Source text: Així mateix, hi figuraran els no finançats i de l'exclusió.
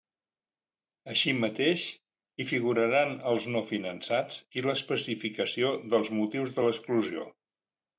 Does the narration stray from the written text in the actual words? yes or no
yes